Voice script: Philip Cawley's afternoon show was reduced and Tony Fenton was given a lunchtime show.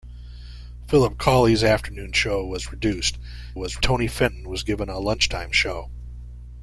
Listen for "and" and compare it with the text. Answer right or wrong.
wrong